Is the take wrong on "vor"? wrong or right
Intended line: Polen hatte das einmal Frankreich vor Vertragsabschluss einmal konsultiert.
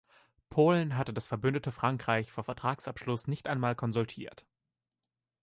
right